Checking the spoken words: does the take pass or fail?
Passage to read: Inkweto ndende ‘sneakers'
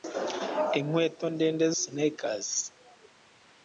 pass